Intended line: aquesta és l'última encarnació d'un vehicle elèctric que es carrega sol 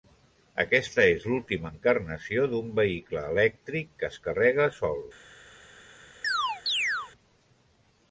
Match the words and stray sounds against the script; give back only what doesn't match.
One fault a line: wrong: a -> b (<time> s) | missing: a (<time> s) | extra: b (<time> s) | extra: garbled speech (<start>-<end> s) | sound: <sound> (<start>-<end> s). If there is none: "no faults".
sound: chirp (6.2-7.1 s)